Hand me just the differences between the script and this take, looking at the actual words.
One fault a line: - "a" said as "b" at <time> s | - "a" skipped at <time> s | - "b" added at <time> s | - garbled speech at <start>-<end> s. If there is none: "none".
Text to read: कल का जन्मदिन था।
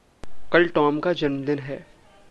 - "टॉम" added at 0.7 s
- "था" said as "है" at 1.6 s